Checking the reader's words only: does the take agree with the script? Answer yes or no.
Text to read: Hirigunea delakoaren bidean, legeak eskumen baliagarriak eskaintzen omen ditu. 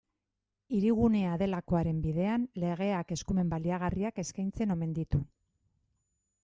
yes